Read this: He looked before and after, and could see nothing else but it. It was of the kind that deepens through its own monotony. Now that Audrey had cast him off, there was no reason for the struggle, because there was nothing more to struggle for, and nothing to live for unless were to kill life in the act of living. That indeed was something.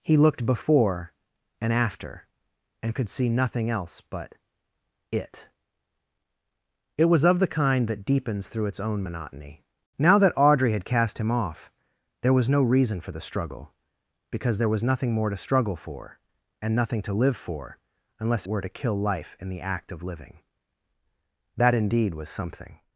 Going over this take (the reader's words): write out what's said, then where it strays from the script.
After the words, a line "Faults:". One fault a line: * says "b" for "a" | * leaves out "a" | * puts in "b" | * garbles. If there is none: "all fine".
He looked before and after, and could see nothing else but it. It was of the kind that deepens through its own monotony. Now that Audrey had cast him off, there was no reason for the struggle, because there was nothing more to struggle for, and nothing to live for unless were to kill life in the act of living. That indeed was something.
Faults:
all fine